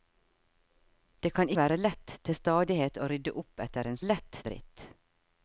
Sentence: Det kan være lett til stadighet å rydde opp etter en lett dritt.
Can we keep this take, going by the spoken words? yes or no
yes